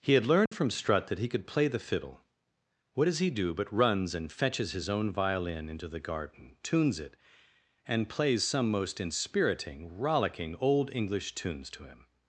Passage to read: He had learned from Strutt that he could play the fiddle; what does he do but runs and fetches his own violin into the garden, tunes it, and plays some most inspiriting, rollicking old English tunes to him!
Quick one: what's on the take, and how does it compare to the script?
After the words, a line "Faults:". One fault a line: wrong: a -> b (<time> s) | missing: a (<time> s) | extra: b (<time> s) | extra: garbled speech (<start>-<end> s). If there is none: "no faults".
He had learned from Strutt that he could play the fiddle; what does he do but runs and fetches his own violin into the garden, tunes it, and plays some most inspiriting, rollicking old English tunes to him!
Faults:
no faults